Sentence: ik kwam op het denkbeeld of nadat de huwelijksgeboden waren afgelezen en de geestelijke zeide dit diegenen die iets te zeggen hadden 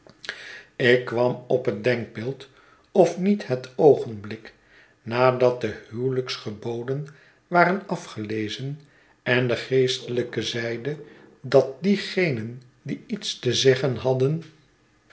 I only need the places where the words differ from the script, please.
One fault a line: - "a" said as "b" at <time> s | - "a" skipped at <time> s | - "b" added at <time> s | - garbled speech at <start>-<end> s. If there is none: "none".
- "niet het oogenblik" added at 3.2 s
- "dit" said as "dat" at 11.4 s